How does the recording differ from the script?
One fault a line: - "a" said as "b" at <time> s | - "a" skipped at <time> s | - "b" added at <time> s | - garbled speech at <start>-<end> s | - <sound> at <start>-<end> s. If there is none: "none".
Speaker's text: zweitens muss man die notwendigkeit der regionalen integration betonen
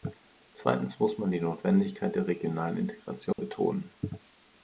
- dropout at 3.3-3.4 s